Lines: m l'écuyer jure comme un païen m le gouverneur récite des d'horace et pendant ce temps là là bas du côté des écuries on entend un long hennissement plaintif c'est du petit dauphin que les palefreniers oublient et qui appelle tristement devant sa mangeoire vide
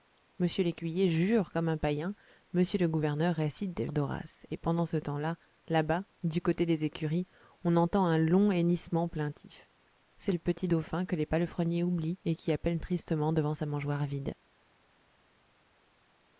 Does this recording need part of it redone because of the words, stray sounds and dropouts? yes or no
no